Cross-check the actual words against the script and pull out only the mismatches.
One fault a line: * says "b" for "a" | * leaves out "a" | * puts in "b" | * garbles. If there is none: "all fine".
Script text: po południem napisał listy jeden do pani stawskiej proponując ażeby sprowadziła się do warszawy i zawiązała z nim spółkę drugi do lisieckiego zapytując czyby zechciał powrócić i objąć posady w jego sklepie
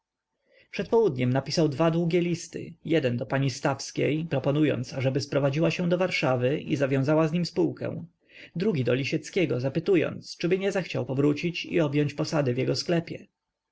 * says "przed" for "po"
* puts in "dwa długie"
* puts in "nie"